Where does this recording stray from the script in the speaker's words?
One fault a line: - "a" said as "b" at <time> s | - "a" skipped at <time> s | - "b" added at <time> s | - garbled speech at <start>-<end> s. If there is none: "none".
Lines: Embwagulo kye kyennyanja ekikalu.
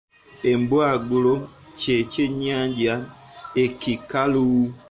none